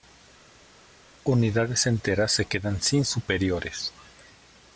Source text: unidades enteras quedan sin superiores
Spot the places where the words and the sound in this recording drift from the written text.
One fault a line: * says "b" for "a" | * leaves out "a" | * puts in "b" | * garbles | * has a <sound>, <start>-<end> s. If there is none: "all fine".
* puts in "se"